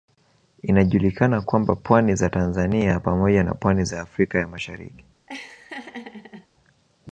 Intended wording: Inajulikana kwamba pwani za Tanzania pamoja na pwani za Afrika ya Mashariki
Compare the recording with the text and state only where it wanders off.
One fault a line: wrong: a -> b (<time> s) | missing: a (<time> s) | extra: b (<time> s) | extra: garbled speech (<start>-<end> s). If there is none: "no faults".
no faults